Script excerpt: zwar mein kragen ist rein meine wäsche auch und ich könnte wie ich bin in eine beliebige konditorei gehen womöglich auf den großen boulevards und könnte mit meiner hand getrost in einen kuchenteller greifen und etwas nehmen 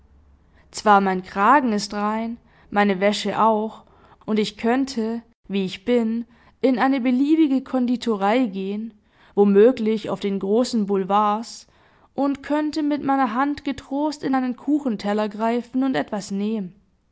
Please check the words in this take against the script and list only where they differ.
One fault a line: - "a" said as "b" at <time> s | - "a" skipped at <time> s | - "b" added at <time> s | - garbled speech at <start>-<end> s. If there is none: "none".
none